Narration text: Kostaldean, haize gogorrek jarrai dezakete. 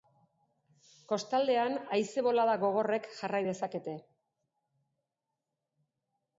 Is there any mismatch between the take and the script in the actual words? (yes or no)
yes